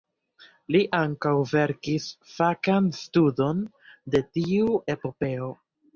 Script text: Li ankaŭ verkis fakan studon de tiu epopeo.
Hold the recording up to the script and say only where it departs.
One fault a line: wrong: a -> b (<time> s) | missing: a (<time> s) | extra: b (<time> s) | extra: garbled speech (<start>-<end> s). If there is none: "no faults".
no faults